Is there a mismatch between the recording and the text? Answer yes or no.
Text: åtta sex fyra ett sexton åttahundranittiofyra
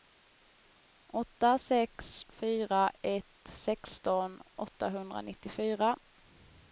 no